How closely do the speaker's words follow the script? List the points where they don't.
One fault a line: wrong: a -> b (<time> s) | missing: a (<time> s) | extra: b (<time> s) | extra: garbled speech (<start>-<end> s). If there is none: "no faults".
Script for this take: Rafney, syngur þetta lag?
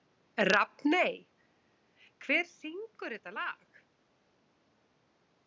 extra: hver (2.2 s)